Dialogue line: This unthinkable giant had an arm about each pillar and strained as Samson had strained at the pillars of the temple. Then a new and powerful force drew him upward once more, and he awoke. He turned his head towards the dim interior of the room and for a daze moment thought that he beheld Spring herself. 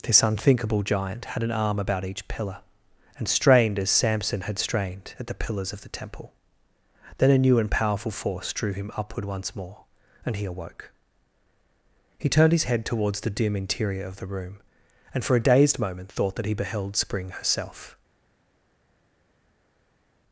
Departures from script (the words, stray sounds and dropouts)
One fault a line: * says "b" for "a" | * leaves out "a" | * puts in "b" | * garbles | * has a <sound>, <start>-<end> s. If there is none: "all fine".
* says "dazed" for "daze"